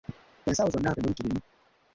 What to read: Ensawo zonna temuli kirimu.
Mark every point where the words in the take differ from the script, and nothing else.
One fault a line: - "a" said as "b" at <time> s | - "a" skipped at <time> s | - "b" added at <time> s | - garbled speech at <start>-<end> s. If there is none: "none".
none